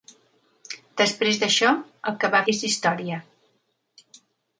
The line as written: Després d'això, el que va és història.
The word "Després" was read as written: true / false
true